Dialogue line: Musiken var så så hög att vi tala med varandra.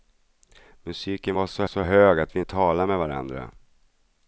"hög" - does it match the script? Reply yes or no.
yes